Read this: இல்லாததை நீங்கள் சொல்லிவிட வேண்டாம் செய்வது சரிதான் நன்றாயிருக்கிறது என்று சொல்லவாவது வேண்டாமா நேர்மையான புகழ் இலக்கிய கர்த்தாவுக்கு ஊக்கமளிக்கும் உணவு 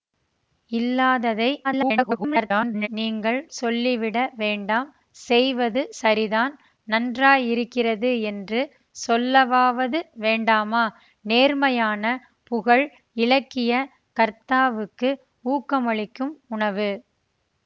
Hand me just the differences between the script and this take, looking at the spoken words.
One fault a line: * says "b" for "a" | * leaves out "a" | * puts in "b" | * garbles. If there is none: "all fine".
* garbles